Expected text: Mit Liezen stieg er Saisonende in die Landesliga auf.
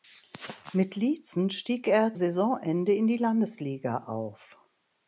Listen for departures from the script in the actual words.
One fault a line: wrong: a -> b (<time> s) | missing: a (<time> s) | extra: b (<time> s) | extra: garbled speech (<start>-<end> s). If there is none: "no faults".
no faults